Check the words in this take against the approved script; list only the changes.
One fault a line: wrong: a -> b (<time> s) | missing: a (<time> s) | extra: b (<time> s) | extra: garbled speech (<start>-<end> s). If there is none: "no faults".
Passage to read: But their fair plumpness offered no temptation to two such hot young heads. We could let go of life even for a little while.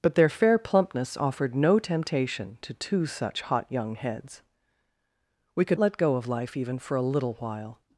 no faults